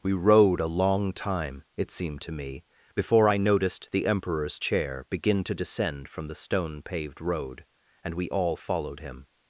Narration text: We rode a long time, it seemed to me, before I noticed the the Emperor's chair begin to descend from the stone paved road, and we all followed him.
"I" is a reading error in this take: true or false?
false